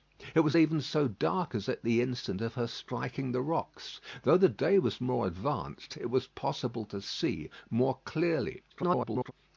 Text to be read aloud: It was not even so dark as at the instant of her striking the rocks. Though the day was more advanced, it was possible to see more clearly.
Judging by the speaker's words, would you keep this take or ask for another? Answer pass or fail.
fail